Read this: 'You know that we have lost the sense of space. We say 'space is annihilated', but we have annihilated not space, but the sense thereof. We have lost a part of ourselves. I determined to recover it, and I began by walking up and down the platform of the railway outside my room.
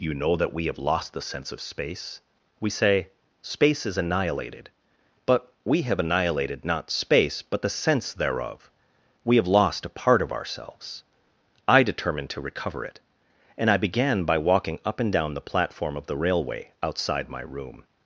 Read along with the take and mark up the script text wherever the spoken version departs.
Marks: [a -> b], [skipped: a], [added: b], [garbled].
'You know that we have lost the sense of space. We say 'space is annihilated', but we have annihilated not space, but the sense thereof. We have lost a part of ourselves. I determined to recover it, and I began by walking up and down the platform of the railway outside my room.